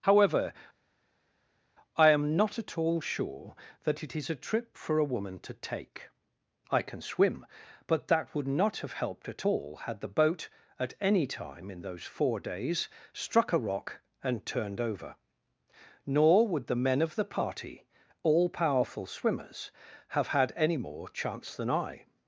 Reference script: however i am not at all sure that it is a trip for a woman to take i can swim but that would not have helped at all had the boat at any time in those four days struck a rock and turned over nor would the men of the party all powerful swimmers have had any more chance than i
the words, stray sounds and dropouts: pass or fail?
pass